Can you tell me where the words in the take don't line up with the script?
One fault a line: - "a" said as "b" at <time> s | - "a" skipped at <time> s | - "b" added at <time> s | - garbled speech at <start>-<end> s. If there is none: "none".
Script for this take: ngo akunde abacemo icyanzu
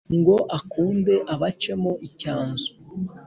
none